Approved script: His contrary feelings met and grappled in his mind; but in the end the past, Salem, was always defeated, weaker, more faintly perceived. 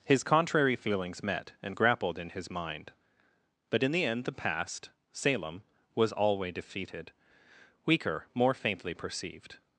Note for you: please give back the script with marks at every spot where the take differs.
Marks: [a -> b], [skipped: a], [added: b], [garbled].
His contrary feelings met and grappled in his mind; but in the end the past, Salem, was [always -> alway] defeated, weaker, more faintly perceived.